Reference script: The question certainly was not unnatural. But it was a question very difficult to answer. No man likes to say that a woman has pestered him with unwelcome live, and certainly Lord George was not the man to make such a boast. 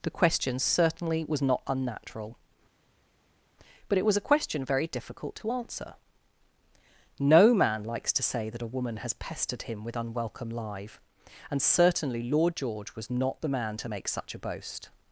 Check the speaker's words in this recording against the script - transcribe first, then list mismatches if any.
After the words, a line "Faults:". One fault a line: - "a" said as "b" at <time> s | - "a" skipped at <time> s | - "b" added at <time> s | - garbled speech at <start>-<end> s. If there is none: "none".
The question certainly was not unnatural. But it was a question very difficult to answer. No man likes to say that a woman has pestered him with unwelcome live, and certainly Lord George was not the man to make such a boast.
Faults:
none